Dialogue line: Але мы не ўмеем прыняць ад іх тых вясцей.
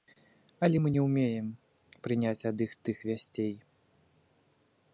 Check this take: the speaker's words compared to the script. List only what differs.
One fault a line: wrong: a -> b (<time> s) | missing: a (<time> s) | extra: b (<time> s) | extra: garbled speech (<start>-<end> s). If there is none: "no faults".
no faults